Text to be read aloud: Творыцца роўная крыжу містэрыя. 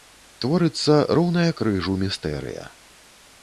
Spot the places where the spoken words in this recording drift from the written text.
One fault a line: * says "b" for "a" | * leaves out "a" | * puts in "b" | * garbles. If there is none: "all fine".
all fine